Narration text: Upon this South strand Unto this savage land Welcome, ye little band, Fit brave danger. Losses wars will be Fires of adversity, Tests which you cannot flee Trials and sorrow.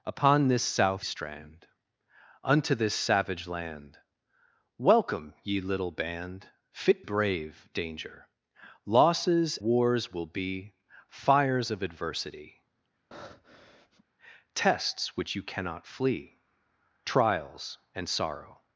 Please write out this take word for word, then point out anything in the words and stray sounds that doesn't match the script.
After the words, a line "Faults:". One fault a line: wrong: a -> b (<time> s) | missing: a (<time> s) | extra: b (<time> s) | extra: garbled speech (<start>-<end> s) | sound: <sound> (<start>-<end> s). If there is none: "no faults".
Upon this South strand Unto this savage land Welcome, ye little band, Fit brave danger. Losses wars will be Fires of adversity, Tests which you cannot flee Trials and sorrow.
Faults:
sound: breath (13.1-14.0 s)